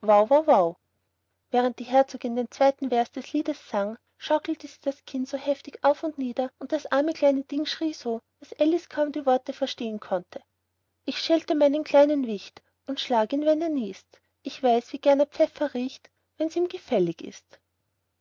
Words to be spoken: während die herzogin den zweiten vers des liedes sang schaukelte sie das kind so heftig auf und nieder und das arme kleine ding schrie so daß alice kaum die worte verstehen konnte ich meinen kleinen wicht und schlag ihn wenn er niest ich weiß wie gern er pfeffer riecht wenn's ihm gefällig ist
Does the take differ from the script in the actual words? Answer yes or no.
yes